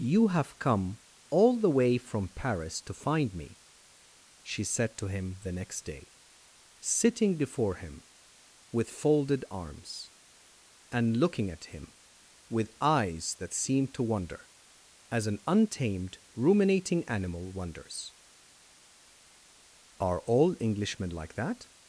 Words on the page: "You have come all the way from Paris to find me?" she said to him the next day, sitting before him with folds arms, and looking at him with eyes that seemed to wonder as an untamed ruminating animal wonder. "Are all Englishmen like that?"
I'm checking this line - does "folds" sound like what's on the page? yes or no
no